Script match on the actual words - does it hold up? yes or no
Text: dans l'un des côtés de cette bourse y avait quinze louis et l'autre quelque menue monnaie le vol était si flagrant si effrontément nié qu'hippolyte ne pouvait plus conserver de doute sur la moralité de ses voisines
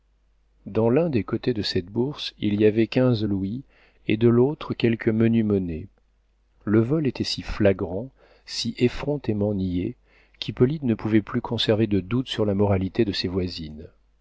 no